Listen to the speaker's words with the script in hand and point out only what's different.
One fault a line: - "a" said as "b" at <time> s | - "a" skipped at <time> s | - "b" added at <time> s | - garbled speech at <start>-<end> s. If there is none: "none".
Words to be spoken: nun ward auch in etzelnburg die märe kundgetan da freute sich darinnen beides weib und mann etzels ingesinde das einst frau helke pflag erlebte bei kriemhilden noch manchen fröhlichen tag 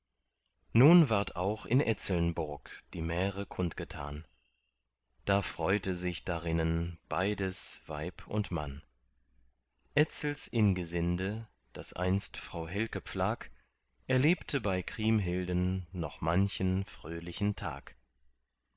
none